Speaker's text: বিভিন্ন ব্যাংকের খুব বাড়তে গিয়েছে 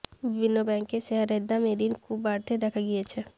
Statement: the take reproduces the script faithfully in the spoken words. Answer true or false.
false